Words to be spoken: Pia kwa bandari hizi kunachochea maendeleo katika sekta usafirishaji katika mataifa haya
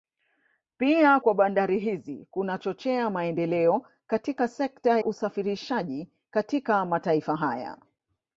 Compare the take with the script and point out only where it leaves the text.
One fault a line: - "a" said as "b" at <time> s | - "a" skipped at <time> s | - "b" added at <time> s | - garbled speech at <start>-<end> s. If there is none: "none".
none